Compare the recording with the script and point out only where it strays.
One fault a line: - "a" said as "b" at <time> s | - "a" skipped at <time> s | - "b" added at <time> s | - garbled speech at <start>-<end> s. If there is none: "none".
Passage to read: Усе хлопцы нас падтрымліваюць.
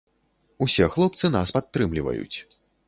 none